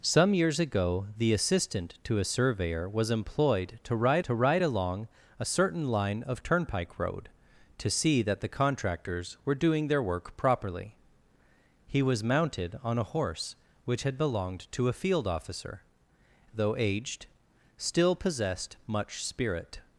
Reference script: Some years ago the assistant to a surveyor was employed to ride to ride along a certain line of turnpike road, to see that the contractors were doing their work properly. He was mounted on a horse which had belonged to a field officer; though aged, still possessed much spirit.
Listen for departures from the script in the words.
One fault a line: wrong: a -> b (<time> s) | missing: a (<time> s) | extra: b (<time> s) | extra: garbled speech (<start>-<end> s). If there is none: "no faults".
no faults